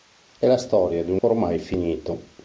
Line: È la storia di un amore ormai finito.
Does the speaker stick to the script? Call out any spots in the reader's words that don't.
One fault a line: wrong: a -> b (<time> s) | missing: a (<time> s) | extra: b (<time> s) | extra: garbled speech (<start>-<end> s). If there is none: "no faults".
missing: amore (1.2 s)